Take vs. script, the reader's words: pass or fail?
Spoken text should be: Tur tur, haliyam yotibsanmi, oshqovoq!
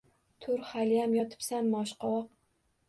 fail